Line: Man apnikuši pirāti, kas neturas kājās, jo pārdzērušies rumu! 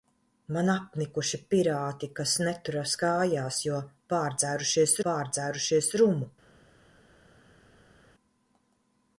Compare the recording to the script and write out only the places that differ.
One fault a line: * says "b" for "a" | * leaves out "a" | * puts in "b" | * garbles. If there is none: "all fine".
* puts in "pārdzērušies"